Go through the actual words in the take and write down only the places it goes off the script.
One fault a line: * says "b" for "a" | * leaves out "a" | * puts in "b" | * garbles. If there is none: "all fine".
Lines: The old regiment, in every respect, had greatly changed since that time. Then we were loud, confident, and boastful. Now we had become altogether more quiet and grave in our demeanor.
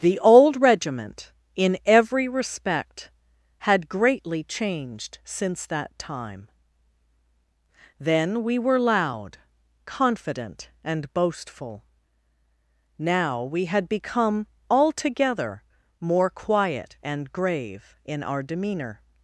all fine